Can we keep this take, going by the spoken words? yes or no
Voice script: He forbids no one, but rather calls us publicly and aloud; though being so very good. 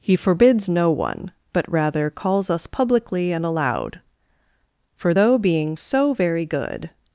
no